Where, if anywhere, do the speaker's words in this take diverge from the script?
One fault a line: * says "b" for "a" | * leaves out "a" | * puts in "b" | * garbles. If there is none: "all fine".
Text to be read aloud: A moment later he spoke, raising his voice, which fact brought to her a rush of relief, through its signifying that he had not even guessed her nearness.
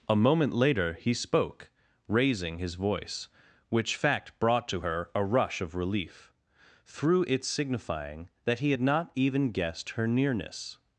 all fine